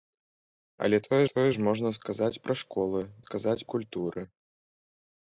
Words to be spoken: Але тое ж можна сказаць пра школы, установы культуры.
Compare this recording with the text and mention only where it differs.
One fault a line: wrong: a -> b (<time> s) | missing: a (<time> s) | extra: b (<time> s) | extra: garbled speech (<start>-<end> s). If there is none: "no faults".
extra: тое (1.3 s)
wrong: установы -> сказаць (3.2 s)